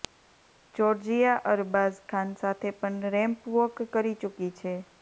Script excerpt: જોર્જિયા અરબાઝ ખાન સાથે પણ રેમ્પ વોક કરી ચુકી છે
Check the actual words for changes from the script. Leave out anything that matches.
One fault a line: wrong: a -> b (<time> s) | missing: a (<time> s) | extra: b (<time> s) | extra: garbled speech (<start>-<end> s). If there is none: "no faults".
no faults